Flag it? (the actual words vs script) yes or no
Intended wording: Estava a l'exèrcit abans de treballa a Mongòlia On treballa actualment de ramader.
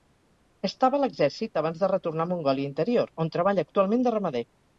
yes